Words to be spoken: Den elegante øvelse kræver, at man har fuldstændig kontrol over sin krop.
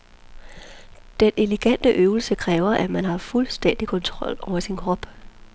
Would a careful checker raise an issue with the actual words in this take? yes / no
no